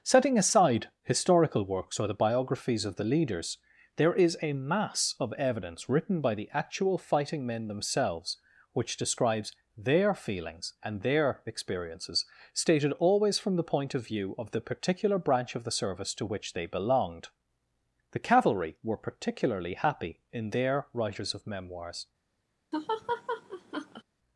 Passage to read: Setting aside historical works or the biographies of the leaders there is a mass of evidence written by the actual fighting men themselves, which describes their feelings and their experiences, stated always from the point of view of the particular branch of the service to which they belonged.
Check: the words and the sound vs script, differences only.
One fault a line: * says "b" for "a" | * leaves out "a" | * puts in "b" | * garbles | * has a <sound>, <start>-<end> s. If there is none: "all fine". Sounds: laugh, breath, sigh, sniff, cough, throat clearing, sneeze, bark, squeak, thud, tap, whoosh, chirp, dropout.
* puts in "The Cavalry were particularly happy in their writers of memoirs"
* has a laugh, 22.7-24.0 s